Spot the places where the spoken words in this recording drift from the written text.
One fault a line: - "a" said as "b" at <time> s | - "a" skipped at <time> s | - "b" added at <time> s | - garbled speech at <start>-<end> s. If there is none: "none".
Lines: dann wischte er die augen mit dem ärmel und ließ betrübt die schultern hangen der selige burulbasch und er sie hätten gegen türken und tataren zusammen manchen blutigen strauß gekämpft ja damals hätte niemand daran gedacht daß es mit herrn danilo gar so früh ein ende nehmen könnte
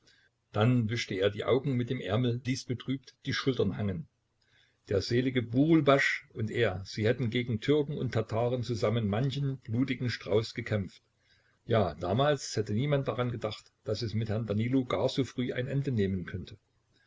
- "und" skipped at 2.4 s